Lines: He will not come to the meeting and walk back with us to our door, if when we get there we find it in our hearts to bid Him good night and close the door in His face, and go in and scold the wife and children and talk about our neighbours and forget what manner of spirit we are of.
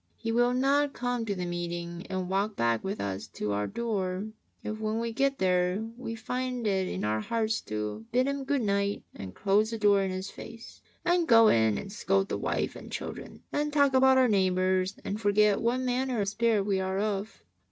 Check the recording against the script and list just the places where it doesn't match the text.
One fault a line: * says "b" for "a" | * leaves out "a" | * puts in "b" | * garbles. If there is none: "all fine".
all fine